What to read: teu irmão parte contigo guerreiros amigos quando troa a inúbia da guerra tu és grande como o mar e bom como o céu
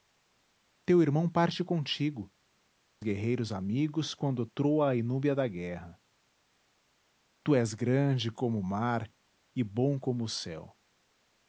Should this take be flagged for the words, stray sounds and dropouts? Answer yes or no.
no